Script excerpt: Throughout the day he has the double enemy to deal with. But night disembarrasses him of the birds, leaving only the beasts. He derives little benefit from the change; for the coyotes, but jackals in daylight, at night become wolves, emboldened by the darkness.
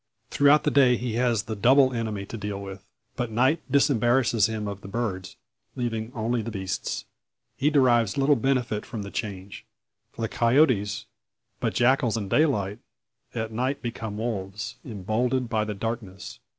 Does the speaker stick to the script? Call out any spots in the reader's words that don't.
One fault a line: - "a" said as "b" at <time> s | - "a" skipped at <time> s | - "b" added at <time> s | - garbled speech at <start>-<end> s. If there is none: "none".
none